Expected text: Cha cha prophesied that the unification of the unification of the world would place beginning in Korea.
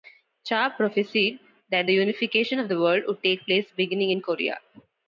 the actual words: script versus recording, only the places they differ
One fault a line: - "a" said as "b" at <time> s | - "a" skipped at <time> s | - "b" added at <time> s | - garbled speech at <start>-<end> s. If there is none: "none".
- "cha" skipped at 0.7 s
- "unification of the" skipped at 2.8 s
- "take" added at 3.2 s